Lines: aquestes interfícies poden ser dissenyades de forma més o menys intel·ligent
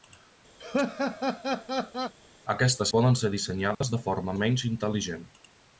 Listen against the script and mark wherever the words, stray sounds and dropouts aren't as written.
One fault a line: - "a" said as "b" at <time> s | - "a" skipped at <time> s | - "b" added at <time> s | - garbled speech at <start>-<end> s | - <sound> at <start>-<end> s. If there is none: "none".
- laugh at 0.6-2.1 s
- "interfícies" skipped at 2.9 s
- dropout at 3.7-3.8 s
- "més" skipped at 4.4 s